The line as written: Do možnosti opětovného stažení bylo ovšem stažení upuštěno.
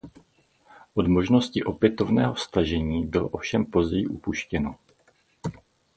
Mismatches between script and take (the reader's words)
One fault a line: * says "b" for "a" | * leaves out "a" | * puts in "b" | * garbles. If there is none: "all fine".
* says "Od" for "Do"
* says "později" for "stažení"